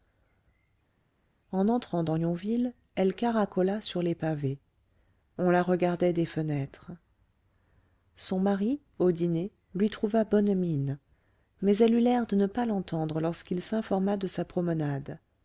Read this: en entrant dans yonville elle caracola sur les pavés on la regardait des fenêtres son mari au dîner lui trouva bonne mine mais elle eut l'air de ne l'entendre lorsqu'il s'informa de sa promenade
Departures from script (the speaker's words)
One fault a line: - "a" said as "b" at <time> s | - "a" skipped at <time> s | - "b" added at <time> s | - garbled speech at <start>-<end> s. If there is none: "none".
- "pas" added at 12.5 s